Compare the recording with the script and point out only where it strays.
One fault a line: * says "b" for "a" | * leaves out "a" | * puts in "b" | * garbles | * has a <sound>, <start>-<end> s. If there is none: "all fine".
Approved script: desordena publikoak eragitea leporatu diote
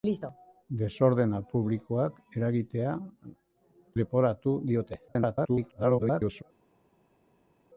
* garbles